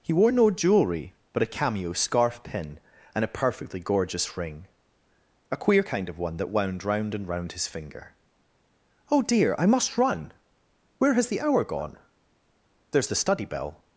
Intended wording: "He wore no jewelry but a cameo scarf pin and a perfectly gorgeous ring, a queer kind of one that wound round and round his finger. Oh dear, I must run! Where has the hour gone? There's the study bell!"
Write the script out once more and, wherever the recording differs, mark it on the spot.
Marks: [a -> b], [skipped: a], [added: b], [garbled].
"He wore no jewelry but a cameo scarf pin and a perfectly gorgeous ring, a queer kind of one that wound round and round his finger. Oh dear, I must run! Where has the hour gone? There's the study bell!"